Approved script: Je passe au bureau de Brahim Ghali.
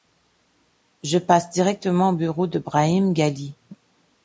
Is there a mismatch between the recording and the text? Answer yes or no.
yes